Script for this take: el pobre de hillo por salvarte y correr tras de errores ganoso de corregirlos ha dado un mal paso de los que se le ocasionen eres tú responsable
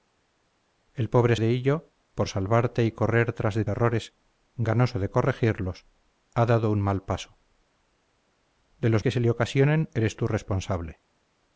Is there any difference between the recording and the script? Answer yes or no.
no